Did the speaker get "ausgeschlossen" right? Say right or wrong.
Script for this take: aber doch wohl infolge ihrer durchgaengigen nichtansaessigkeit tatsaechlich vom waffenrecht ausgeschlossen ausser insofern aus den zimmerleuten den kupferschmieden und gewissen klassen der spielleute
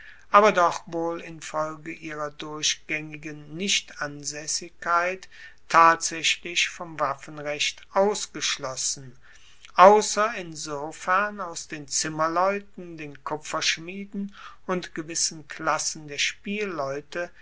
right